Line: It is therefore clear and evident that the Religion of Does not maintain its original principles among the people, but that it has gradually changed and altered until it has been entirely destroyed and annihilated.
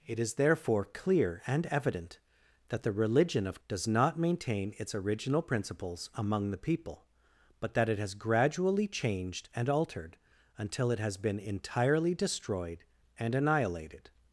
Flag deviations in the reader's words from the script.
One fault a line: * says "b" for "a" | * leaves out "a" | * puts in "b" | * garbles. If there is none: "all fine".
all fine